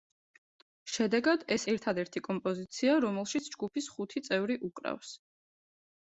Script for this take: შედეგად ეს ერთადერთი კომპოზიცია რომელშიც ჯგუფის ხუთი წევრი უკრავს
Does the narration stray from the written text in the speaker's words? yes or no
no